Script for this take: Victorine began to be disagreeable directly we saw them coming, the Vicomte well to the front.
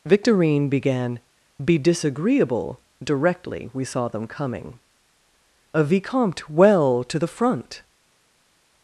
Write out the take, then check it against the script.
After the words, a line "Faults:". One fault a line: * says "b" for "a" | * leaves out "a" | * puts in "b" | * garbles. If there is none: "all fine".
Victorine began be disagreeable directly we saw them coming, a Vicomte well to the front.
Faults:
* leaves out "to"
* says "a" for "the"